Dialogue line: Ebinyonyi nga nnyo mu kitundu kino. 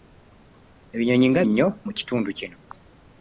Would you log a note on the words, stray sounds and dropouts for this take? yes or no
no